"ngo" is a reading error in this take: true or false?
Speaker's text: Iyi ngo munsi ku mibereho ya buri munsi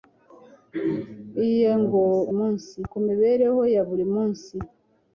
false